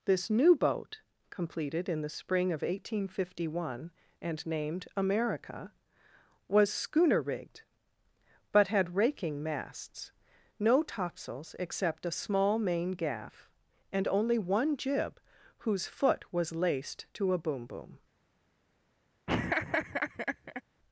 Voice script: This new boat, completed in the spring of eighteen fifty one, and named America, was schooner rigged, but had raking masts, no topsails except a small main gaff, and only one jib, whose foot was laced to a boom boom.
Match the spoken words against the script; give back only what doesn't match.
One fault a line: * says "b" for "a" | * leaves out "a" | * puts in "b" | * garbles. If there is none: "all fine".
all fine